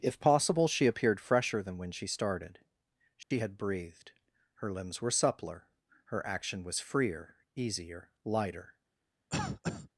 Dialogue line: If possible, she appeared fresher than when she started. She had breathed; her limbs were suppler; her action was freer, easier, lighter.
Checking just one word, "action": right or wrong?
right